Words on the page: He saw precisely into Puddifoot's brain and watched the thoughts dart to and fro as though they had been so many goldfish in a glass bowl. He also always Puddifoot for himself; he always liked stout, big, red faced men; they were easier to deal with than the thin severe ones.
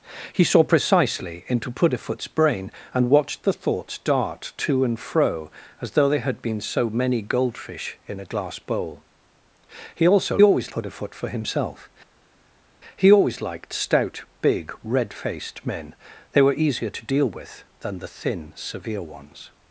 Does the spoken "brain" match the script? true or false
true